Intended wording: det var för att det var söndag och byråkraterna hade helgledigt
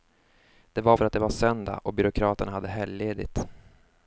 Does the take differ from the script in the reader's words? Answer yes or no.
no